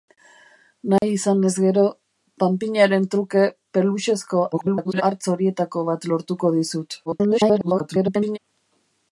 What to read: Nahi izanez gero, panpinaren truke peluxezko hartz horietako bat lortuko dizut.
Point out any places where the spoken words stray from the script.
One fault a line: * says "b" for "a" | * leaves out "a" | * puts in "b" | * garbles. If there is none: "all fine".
* garbles
* garbles